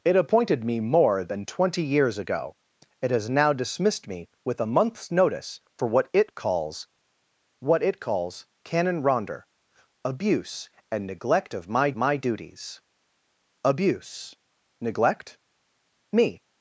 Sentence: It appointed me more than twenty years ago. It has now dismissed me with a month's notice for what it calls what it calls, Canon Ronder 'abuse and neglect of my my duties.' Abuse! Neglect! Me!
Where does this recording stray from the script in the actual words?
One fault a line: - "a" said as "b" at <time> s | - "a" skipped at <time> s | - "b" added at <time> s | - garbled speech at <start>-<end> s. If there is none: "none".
none